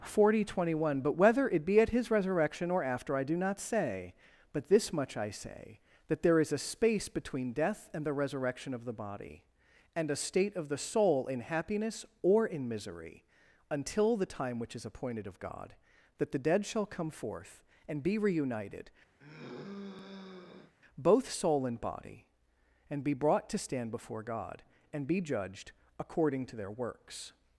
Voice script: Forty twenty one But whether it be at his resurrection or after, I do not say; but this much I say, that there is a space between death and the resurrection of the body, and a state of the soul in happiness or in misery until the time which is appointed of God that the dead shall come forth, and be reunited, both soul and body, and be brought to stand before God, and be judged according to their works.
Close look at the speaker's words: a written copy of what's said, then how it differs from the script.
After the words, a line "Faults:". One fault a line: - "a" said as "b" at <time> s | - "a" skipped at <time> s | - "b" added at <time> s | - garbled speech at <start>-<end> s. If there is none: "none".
Forty twenty one But whether it be at his resurrection or after, I do not say; but this much I say, that there is a space between death and the resurrection of the body, and a state of the soul in happiness or in misery until the time which is appointed of God that the dead shall come forth, and be reunited, both soul and body, and be brought to stand before God, and be judged according to their works.
Faults:
none